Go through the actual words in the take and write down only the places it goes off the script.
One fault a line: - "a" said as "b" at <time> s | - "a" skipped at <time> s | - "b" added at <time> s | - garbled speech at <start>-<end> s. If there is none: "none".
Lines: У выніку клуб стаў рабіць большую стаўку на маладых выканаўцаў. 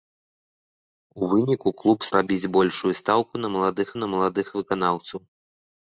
- "стаў" skipped at 2.1 s
- "на маладых" added at 4.0 s